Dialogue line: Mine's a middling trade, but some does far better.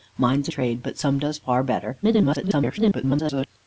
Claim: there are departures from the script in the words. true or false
true